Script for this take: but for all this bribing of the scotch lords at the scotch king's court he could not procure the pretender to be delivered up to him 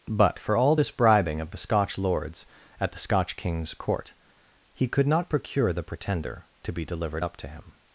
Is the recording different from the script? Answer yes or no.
no